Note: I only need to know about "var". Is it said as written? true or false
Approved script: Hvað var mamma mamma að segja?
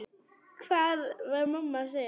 true